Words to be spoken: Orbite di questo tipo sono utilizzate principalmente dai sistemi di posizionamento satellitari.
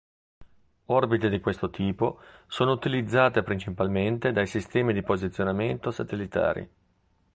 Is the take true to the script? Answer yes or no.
yes